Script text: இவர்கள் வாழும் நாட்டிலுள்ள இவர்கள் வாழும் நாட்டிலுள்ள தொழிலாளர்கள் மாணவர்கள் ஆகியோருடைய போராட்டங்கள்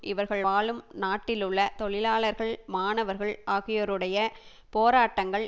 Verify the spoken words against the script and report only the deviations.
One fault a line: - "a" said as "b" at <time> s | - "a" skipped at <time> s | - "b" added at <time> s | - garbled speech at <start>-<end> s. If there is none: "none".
- "இவர்கள் வாழும் நாட்டிலுள்ள" skipped at 1.6 s